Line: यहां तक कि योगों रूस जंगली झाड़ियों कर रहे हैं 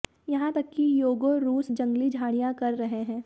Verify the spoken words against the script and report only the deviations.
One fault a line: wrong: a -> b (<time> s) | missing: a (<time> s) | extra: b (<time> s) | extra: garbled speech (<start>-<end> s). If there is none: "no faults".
no faults